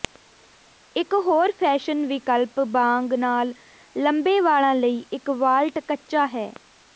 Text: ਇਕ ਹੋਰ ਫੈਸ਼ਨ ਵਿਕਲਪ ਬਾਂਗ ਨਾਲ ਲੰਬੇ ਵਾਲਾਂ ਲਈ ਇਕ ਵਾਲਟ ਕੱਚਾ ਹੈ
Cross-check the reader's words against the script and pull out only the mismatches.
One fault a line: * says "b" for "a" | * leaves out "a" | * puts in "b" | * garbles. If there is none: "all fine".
all fine